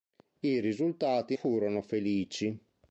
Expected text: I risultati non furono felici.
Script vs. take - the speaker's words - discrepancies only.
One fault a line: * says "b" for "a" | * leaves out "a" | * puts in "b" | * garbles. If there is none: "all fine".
* leaves out "non"